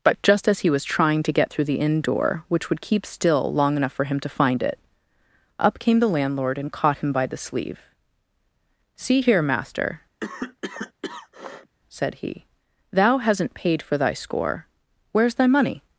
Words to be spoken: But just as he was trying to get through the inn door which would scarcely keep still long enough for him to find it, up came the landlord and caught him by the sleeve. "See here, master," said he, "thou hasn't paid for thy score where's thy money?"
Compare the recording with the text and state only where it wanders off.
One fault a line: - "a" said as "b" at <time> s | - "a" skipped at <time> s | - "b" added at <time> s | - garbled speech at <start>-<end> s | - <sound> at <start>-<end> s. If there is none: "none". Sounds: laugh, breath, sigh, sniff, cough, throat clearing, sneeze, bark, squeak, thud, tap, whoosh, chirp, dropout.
- "scarcely" skipped at 2.8 s
- cough at 10.2-11.8 s